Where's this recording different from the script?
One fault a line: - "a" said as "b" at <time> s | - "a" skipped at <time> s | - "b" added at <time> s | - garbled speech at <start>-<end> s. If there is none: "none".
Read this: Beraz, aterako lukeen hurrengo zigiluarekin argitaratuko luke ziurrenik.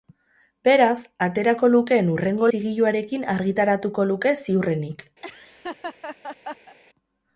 none